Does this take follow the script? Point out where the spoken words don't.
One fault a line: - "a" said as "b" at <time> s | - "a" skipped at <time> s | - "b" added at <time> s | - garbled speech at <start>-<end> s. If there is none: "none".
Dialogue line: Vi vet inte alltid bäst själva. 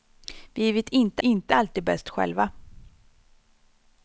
- "inte" added at 1.2 s